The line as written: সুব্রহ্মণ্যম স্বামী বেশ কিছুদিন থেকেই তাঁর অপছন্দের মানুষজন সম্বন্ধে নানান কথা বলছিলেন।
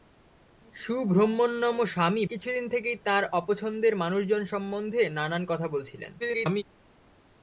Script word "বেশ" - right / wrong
wrong